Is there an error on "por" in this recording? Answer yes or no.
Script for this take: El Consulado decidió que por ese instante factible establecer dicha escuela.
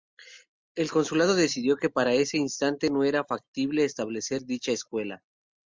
yes